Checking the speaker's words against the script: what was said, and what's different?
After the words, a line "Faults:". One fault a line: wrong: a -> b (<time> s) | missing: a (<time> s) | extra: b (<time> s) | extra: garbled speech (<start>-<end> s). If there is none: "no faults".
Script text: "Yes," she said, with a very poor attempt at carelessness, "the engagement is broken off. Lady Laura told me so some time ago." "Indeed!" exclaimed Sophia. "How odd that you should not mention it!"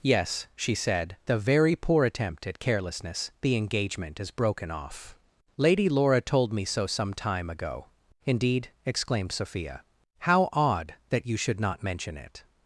"Yes," she said, a very poor attempt at carelessness, "the engagement is broken off. Lady Laura told me so some time ago." "Indeed!" exclaimed Sophia. "How odd that you should not mention it!"
Faults:
missing: with (1.2 s)